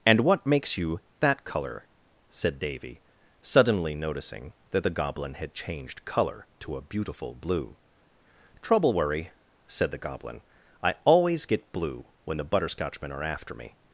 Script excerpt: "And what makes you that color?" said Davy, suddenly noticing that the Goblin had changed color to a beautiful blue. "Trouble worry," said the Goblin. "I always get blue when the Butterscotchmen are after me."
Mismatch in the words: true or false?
false